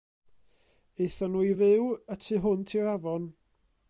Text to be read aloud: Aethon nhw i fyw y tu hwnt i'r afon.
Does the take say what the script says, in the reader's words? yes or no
yes